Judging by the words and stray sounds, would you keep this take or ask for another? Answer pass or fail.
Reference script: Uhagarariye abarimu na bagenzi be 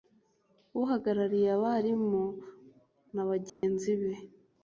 fail